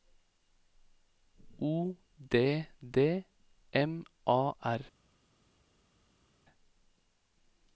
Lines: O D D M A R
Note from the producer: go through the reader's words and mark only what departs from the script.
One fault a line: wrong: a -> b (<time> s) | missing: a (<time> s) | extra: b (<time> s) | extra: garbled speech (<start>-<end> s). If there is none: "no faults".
no faults